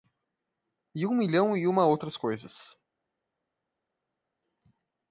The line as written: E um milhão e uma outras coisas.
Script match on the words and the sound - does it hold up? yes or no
yes